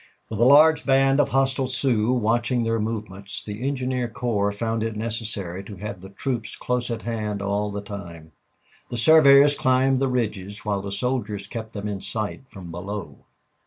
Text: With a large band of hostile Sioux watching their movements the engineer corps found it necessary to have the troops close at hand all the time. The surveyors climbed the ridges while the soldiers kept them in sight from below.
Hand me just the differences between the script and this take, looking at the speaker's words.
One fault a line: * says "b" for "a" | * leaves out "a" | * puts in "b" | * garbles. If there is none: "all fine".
all fine